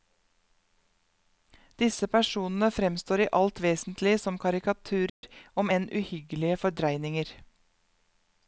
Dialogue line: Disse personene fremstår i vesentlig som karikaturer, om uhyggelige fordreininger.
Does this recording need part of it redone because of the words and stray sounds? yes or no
yes